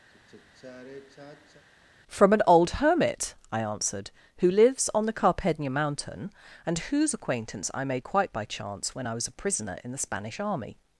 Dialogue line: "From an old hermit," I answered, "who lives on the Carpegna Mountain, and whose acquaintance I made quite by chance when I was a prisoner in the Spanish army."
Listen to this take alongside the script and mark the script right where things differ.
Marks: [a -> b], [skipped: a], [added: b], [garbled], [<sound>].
[sigh] "From an old hermit," I answered, "who lives on the Carpegna Mountain, and whose acquaintance I made quite by chance when I was a prisoner in the Spanish army."